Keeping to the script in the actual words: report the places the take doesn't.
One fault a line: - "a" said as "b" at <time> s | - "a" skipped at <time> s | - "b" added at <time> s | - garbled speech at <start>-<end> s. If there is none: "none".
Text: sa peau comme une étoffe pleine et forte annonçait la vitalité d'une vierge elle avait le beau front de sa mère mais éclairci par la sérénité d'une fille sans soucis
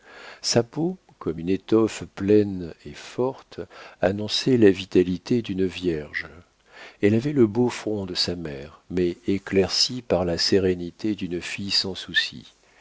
none